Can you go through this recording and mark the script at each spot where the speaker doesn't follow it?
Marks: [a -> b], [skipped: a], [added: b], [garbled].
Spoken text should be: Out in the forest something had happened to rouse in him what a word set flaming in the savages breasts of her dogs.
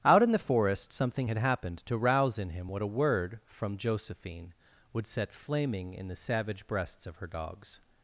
Out in the forest something had happened to rouse in him what a word [added: from Josephine would] set flaming in the [savages -> savage] breasts of her dogs.